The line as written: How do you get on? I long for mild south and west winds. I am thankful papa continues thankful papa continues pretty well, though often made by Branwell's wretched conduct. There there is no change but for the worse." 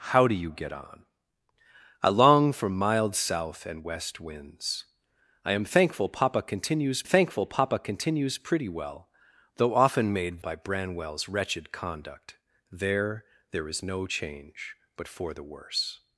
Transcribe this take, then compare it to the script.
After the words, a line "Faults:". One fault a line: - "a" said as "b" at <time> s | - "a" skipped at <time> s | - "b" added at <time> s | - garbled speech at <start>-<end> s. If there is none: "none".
How do you get on? I long for mild south and west winds. I am thankful papa continues thankful papa continues pretty well, though often made by Branwell's wretched conduct. There there is no change but for the worse."
Faults:
none